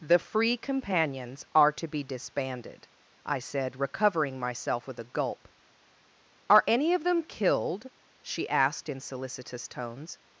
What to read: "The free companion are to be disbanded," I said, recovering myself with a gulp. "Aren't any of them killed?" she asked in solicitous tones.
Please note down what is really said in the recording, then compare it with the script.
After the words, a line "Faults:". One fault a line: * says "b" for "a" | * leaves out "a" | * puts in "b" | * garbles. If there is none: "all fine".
"The free companions are to be disbanded," I said, recovering myself with a gulp. "Are any of them killed?" she asked in solicitous tones.
Faults:
* says "companions" for "companion"
* says "Are" for "Aren't"